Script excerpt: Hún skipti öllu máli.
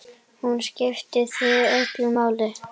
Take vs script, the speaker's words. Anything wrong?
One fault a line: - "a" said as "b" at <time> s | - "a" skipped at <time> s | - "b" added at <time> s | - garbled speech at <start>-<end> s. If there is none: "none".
- "þig" added at 1.3 s